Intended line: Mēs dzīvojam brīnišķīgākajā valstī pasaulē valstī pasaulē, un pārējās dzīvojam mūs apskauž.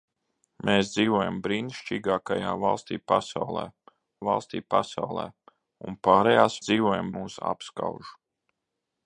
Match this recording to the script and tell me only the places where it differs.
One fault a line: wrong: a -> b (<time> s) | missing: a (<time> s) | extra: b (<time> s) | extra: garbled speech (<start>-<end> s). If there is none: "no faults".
no faults